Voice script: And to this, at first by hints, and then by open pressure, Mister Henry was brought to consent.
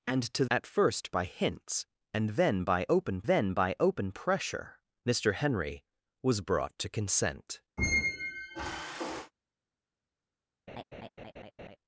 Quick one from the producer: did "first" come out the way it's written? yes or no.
yes